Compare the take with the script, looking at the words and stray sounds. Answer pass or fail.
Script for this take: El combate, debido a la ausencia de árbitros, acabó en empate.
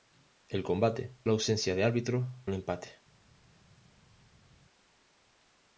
fail